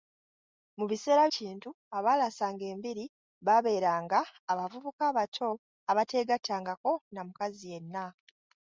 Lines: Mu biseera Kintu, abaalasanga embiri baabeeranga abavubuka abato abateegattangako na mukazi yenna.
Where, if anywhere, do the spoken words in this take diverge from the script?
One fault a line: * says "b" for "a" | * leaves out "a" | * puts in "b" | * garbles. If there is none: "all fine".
all fine